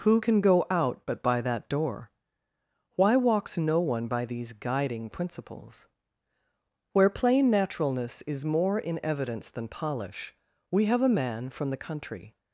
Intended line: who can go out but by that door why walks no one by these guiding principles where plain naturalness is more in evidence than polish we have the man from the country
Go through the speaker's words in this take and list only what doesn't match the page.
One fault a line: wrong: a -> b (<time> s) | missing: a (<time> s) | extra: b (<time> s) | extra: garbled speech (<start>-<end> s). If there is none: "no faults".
wrong: the -> a (11.0 s)